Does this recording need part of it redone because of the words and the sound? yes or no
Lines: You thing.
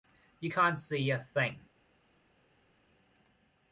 yes